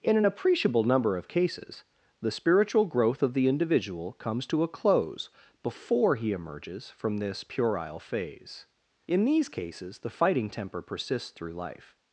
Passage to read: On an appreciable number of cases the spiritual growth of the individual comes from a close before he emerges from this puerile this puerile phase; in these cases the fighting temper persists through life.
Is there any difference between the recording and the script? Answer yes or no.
yes